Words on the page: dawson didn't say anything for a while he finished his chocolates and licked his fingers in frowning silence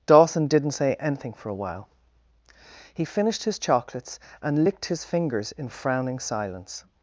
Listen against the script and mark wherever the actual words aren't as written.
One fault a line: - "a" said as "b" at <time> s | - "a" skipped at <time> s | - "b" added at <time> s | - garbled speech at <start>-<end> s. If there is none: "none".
none